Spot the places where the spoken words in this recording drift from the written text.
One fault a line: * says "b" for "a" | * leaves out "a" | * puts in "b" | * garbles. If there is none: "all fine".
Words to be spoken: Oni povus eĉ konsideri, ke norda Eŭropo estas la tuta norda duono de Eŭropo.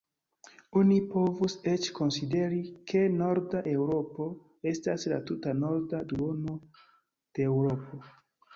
all fine